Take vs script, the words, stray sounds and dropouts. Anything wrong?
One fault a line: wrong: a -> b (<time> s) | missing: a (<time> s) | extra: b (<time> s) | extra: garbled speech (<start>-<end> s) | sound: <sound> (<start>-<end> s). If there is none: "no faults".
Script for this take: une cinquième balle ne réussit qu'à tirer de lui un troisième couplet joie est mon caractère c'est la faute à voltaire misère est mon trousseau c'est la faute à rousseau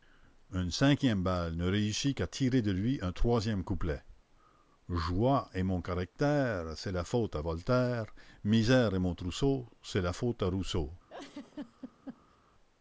sound: laugh (11.1-12.4 s)